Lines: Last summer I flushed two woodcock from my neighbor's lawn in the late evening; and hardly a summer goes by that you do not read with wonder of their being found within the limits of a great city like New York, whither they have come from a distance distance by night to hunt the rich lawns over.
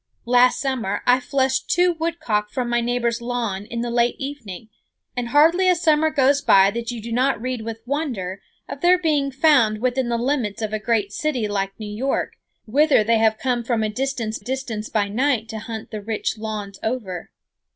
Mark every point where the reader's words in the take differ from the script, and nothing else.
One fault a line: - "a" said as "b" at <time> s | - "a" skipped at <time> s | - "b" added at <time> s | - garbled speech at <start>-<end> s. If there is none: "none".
none